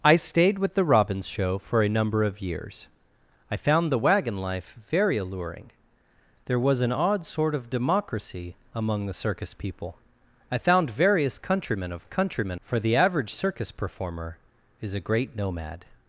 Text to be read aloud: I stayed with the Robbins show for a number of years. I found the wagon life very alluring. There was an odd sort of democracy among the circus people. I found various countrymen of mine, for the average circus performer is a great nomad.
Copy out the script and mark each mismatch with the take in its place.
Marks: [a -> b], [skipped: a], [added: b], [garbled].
I stayed with the Robbins show for a number of years. I found the wagon life very alluring. There was an odd sort of democracy among the circus people. I found various countrymen of [mine, -> countrymen] for the average circus performer is a great nomad.